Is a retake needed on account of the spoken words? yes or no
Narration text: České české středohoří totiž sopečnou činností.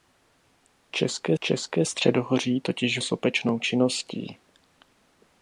no